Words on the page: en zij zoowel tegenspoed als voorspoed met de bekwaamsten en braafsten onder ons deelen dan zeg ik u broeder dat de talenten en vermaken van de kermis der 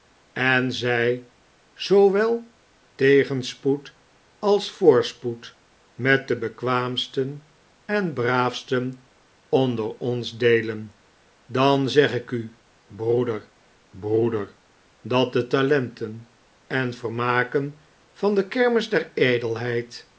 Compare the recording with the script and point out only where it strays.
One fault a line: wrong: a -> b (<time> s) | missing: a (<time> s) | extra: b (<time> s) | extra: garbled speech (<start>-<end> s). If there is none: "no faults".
extra: broeder (13.9 s)